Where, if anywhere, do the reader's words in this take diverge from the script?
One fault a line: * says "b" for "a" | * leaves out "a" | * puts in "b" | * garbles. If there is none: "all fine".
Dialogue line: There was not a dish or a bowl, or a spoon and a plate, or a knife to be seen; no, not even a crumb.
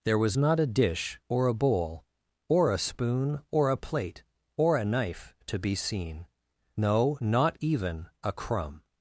* says "or" for "and"